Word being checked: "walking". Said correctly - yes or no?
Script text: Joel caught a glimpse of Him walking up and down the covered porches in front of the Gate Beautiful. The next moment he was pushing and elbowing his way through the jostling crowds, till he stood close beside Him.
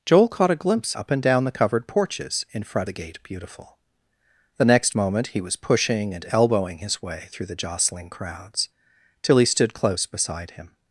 no